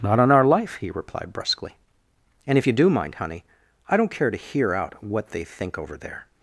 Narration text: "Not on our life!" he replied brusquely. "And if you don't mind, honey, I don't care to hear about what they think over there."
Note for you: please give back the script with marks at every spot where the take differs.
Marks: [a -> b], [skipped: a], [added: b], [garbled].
"Not on our life!" he replied brusquely. "And if you [don't -> do] mind, honey, I don't care to hear [about -> out] what they think over there."